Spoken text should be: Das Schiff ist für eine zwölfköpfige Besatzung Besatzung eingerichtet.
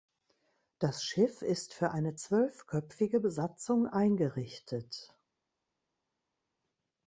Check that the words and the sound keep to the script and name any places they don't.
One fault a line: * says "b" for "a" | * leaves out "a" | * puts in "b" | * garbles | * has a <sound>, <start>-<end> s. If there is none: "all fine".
* leaves out "Besatzung"